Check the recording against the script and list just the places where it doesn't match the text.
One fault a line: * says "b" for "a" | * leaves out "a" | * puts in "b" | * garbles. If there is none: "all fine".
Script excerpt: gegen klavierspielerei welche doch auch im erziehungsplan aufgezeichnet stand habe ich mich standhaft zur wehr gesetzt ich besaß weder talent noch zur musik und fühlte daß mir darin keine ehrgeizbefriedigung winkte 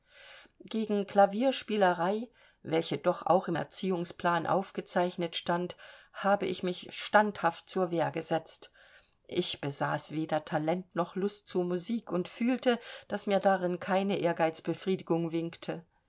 * puts in "lust"